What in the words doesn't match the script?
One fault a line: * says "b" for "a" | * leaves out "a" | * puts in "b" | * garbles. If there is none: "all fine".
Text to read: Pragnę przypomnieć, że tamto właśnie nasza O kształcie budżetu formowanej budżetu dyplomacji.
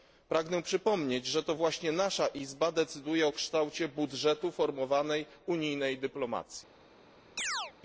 * says "to" for "tamto"
* puts in "Izba decyduje"
* says "unijnej" for "budżetu"